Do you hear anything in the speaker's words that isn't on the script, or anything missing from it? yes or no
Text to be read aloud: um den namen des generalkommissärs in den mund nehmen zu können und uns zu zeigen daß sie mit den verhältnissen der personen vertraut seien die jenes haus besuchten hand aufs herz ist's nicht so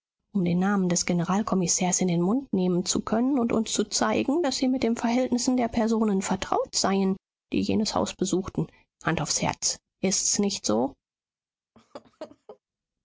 no